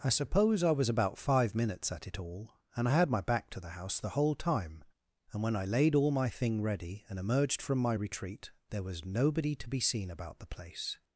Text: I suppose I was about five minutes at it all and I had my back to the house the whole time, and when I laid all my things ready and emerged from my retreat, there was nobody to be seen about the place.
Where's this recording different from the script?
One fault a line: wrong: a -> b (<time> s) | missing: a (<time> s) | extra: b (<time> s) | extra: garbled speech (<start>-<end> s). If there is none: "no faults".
wrong: things -> thing (6.3 s)